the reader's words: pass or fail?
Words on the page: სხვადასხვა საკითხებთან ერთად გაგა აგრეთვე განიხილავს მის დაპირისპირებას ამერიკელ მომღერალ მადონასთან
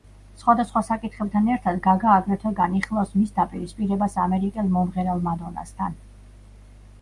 pass